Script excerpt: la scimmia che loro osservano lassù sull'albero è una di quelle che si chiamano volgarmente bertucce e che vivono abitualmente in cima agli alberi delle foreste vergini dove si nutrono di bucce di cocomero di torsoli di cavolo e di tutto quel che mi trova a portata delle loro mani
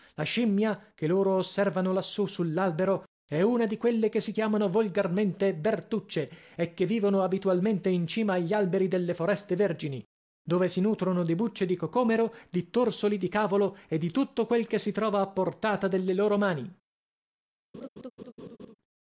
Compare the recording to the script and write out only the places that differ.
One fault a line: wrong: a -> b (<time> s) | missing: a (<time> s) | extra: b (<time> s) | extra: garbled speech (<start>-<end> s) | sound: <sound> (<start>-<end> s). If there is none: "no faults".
wrong: mi -> si (14.8 s)
sound: laugh (17.7-18.8 s)